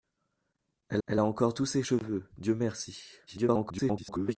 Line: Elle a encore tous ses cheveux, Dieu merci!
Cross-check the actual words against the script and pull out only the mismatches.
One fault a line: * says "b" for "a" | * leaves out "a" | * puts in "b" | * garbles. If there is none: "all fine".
* puts in "elle"
* garbles